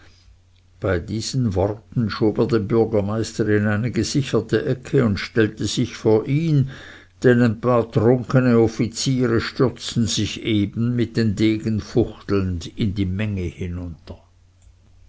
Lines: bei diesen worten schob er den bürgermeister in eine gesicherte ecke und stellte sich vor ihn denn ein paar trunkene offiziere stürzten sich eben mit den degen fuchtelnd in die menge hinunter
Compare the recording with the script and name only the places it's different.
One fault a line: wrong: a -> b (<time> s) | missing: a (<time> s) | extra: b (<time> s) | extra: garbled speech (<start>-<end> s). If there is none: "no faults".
no faults